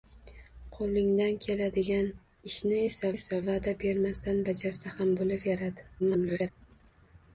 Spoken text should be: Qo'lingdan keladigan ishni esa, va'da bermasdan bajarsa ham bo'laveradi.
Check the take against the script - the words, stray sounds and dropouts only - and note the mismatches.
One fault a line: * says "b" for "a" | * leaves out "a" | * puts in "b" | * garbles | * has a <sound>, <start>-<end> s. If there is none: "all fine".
* puts in "esa"
* garbles